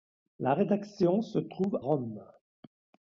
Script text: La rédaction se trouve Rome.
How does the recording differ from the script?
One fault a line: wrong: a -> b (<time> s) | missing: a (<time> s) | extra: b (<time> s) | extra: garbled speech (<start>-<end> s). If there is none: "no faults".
no faults